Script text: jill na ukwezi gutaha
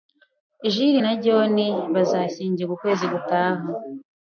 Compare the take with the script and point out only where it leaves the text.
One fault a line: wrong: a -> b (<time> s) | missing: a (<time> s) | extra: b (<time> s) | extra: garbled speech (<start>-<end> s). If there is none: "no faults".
extra: john bazashyingirwa (1.2 s)